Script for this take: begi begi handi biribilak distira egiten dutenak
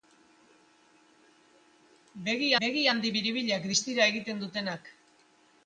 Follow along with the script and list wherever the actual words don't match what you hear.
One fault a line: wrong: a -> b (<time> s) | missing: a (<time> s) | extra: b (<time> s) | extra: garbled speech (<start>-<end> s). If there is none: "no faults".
no faults